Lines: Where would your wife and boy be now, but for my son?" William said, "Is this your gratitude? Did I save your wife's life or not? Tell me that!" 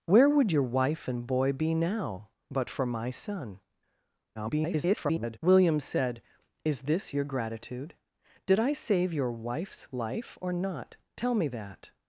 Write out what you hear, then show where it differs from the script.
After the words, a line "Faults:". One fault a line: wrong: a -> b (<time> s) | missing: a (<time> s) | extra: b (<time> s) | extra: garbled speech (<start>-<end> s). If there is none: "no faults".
Where would your wife and boy be now, but for my son?" [garbled] William said, "Is this your gratitude? Did I save your wife's life or not? Tell me that!"
Faults:
extra: garbled speech (4.4-5.4 s)